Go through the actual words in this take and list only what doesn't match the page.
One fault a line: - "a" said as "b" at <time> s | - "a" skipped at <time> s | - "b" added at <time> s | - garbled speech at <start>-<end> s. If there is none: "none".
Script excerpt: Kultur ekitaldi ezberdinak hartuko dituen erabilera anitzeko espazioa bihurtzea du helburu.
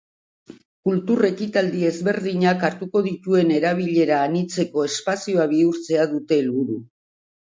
- "du" said as "dute" at 6.1 s